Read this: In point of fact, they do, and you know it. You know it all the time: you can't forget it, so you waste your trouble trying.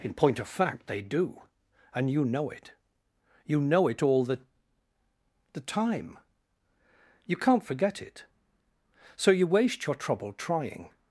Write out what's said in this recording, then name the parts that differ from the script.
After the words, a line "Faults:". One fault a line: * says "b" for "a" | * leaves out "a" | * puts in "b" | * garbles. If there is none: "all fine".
In point of fact, they do, and you know it. You know it all the the time: you can't forget it, so you waste your trouble trying.
Faults:
* puts in "the"